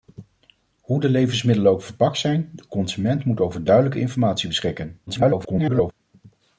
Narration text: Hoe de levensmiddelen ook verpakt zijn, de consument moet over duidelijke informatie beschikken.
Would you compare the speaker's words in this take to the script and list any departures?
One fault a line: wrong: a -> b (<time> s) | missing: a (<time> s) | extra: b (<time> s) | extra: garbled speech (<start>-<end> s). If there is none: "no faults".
extra: garbled speech (5.1-5.9 s)